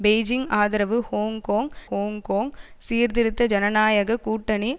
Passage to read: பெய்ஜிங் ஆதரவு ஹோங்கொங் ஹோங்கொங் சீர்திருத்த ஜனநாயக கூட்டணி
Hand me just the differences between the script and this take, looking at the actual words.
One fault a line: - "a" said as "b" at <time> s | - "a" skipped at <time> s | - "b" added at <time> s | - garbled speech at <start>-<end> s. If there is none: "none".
none